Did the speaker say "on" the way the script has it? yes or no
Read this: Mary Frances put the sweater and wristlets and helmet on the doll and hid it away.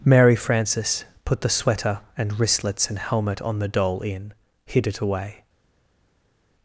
yes